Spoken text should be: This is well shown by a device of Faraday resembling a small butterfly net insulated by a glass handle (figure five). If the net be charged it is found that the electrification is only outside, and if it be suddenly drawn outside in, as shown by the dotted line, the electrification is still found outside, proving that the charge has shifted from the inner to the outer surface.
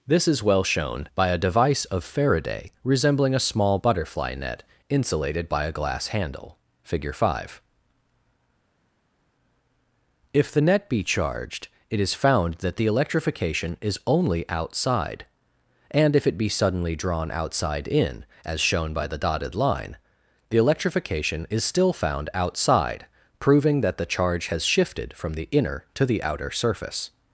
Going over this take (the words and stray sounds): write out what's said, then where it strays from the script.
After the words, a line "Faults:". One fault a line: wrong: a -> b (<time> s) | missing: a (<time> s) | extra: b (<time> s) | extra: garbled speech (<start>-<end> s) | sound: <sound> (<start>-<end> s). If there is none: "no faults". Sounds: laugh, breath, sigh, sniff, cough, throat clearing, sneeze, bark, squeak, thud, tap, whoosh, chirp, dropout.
This is well shown by a device of Faraday resembling a small butterfly net insulated by a glass handle (figure five). If the net be charged it is found that the electrification is only outside, and if it be suddenly drawn outside in, as shown by the dotted line, the electrification is still found outside, proving that the charge has shifted from the inner to the outer surface.
Faults:
no faults